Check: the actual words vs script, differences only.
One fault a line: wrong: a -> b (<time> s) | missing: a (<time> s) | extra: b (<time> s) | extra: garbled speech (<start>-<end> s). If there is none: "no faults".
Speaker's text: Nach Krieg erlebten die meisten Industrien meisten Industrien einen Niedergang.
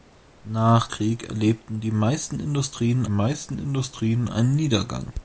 no faults